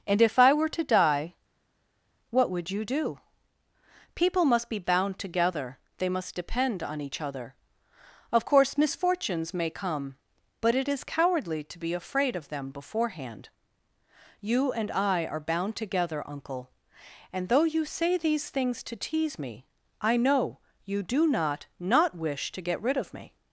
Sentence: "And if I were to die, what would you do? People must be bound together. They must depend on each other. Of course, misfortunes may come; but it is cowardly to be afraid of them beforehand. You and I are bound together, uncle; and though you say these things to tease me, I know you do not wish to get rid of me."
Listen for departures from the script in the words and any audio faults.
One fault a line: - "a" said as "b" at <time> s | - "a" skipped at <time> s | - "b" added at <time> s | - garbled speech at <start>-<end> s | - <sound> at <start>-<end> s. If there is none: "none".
- "not" added at 21.8 s